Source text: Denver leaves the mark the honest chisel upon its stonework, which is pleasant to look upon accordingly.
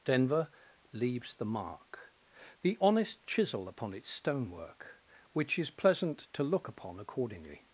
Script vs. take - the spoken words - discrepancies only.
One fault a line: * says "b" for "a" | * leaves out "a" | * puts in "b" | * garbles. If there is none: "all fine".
all fine